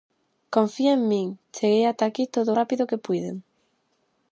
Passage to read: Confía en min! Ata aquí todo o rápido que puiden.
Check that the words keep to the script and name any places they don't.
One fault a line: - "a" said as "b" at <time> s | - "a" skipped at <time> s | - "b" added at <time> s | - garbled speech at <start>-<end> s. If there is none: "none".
- "Cheguei" added at 1.6 s